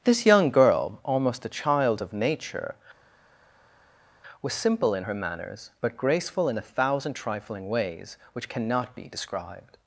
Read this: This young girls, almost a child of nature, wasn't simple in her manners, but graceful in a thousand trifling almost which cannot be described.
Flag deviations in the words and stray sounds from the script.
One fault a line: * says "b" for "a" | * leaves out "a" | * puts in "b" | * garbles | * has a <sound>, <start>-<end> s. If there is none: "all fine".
* says "girl" for "girls"
* says "was" for "wasn't"
* says "ways" for "almost"